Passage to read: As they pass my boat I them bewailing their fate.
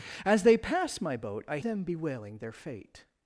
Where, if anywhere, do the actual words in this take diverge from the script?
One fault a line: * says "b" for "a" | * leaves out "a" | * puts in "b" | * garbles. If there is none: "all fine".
all fine